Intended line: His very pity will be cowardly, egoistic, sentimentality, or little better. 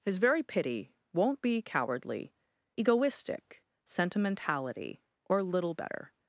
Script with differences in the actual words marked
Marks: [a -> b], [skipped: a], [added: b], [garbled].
His very pity [will -> won't] be cowardly, egoistic, sentimentality, or little better.